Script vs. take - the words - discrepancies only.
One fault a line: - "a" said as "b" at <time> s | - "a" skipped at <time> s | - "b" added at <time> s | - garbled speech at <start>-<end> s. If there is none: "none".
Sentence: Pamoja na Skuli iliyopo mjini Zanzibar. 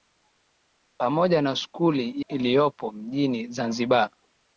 none